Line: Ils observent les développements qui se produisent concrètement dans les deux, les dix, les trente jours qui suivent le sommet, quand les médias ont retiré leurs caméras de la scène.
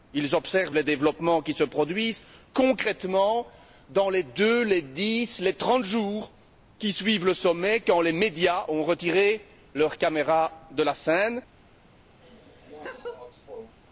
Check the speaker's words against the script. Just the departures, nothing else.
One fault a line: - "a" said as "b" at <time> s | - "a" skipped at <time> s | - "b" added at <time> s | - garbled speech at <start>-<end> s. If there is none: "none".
none